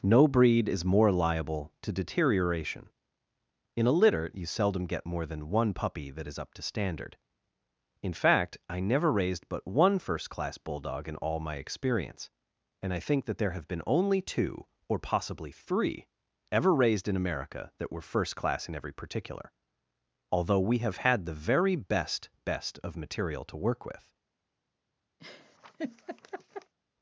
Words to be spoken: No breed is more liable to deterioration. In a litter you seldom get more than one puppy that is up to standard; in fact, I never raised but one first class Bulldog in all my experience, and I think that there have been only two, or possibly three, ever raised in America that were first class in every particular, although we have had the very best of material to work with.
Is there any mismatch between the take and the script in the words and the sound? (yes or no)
yes